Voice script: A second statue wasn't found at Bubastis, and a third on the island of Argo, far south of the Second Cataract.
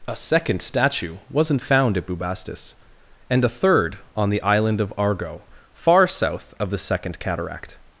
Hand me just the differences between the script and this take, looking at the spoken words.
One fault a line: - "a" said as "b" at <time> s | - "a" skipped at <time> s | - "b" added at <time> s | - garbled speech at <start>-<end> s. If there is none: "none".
none